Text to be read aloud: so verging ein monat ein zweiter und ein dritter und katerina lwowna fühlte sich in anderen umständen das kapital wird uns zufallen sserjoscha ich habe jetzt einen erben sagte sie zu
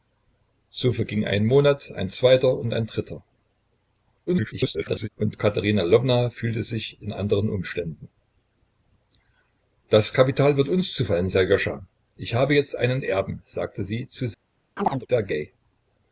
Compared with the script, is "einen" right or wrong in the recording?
right